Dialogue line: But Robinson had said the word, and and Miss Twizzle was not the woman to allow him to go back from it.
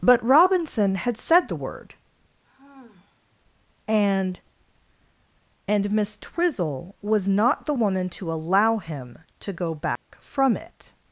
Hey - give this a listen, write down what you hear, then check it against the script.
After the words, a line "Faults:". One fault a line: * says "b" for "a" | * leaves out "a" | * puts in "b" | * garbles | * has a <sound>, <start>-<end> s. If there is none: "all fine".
But Robinson had said the word, and and Miss Twizzle was not the woman to allow him to go back from it.
Faults:
* has a sigh, 2.4-3.4 s
* has a dropout, 10.0-10.1 s